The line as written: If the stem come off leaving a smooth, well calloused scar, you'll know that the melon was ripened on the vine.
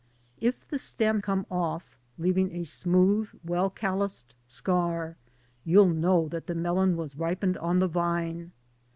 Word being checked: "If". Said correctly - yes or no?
yes